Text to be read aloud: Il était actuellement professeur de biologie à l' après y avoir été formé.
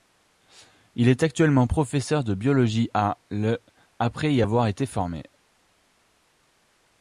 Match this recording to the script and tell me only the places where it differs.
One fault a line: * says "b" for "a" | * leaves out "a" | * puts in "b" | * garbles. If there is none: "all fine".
* says "est" for "était"